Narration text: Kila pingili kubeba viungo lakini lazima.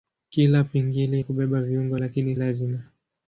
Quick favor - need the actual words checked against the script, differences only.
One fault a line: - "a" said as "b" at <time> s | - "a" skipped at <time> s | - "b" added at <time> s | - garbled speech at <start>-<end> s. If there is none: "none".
none